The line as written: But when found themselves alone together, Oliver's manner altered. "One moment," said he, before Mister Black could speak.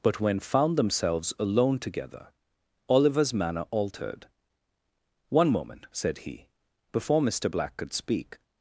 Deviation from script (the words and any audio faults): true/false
false